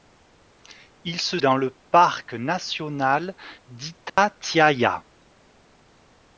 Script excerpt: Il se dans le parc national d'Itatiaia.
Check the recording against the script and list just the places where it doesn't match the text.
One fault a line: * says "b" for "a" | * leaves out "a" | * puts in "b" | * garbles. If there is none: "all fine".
all fine